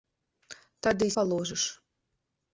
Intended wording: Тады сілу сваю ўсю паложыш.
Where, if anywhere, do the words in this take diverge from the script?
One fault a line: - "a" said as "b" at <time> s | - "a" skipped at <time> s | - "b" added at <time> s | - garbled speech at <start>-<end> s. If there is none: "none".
- "сілу сваю ўсю" skipped at 1.1 s